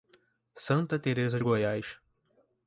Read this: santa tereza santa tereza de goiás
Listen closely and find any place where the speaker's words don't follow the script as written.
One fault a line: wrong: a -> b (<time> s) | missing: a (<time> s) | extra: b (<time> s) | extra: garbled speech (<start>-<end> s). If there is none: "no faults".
missing: santa tereza (1.4 s)